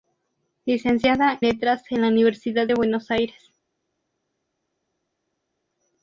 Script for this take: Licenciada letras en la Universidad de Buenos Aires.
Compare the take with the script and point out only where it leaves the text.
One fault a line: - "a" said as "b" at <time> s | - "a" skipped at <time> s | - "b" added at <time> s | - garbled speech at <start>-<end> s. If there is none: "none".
none